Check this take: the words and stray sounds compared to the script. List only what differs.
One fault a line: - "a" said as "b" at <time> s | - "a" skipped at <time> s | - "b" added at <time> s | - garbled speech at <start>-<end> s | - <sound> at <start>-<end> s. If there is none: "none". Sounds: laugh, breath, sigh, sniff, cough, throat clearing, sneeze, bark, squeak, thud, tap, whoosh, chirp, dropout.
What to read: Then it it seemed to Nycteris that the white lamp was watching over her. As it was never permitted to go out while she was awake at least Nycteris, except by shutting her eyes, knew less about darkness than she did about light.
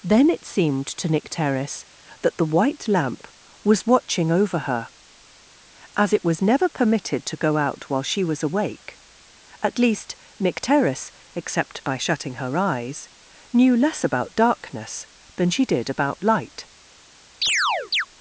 - "it" skipped at 0.5 s
- chirp at 17.4-18.1 s